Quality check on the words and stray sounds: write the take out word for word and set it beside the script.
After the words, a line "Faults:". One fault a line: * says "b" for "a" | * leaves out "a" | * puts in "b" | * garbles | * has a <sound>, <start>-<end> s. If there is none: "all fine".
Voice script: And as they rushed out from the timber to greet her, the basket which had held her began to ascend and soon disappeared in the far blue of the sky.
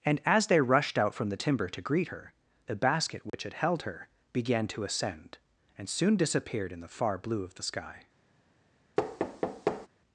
And as they rushed out from the timber to greet her, the basket which had held her began to ascend and soon disappeared in the far blue of the sky.
Faults:
* has a dropout, 3.3-3.3 s
* has a thud, 9.0-9.9 s